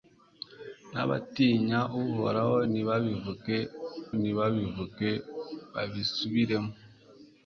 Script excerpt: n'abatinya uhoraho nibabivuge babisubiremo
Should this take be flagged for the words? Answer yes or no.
yes